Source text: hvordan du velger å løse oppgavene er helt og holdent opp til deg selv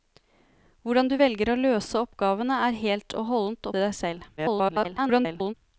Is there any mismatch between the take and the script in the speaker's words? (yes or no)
yes